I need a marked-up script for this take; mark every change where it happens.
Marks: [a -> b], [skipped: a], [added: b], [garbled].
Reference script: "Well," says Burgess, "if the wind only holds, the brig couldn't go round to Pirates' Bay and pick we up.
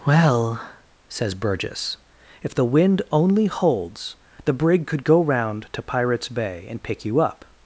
"Well," says Burgess, "if the wind only holds, the brig [couldn't -> could] go round to Pirates' Bay and pick [we -> you] up.